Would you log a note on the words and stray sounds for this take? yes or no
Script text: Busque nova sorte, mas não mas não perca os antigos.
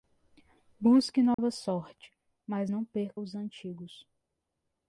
yes